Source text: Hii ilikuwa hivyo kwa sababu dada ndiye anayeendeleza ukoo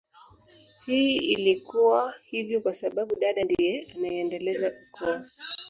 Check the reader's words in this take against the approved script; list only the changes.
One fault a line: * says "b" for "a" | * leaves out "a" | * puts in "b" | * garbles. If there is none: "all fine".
all fine